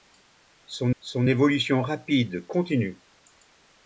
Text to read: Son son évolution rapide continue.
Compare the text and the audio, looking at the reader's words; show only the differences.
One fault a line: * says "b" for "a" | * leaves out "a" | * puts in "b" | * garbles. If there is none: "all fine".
all fine